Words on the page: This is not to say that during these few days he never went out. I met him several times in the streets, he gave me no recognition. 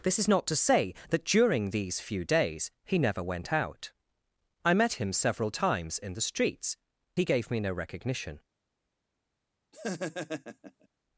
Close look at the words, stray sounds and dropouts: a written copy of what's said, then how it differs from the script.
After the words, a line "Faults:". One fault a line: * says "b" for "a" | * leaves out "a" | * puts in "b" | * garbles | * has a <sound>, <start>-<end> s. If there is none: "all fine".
This is not to say that during these few days he never went out. I met him several times in the streets, he gave me no recognition.
Faults:
* has a laugh, 9.7-10.9 s